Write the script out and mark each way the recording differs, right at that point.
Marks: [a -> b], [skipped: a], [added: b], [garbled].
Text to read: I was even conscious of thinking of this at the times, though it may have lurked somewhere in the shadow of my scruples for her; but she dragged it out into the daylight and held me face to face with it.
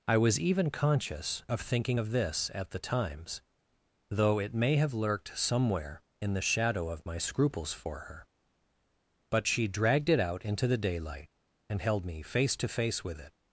I was even conscious of thinking of this at the times, though it may have lurked somewhere in the shadow of my scruples for her; but she dragged it out into the daylight and held me face to face with it.